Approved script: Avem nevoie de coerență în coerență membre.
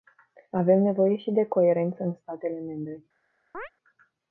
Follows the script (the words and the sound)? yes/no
no